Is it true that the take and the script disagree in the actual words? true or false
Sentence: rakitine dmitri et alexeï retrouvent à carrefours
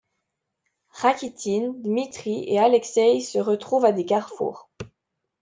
true